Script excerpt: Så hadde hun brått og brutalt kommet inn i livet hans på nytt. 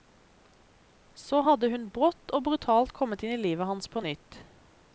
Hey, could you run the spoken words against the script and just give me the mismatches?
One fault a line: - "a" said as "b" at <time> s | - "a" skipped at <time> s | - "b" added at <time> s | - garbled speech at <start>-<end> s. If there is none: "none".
none